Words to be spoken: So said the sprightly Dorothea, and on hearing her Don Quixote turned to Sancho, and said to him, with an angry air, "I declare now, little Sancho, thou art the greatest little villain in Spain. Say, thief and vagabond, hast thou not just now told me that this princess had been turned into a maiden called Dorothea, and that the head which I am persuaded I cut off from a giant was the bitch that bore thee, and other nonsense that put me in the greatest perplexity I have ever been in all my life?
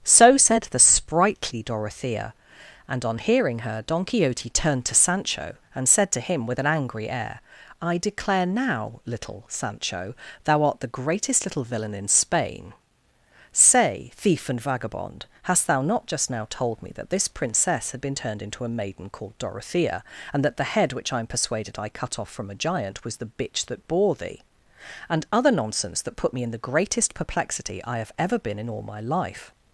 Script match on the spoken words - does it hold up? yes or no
yes